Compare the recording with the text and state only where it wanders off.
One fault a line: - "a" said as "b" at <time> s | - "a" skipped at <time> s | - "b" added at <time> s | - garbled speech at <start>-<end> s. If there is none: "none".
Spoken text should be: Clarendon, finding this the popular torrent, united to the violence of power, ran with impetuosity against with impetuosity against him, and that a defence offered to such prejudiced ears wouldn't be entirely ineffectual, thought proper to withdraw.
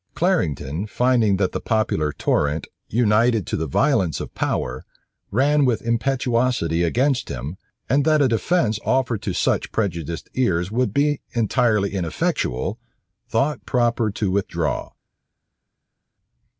- "this" said as "that" at 1.4 s
- "with impetuosity against" skipped at 7.3 s
- "wouldn't" said as "would" at 10.7 s